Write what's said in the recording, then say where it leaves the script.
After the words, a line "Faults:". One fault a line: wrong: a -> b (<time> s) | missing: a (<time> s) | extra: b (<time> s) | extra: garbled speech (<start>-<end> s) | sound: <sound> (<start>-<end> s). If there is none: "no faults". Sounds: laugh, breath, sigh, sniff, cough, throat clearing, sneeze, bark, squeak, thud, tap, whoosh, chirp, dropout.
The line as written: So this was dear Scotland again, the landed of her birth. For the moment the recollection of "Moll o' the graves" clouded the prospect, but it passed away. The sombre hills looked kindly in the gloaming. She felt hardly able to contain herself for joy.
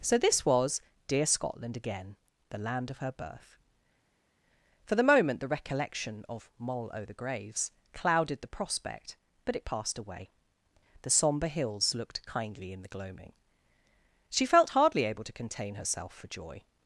So this was dear Scotland again, the land of her birth. For the moment the recollection of "Moll o' the graves" clouded the prospect, but it passed away. The sombre hills looked kindly in the gloaming. She felt hardly able to contain herself for joy.
Faults:
wrong: landed -> land (2.6 s)